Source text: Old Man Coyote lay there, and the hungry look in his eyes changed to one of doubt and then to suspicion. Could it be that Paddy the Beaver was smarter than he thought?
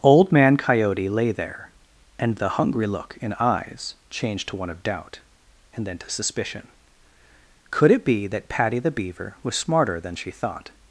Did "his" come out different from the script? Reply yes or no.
yes